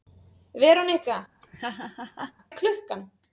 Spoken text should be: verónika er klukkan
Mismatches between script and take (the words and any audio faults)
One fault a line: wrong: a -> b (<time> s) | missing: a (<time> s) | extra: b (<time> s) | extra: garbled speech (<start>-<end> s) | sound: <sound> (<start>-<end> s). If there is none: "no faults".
sound: laugh (1.4-2.3 s)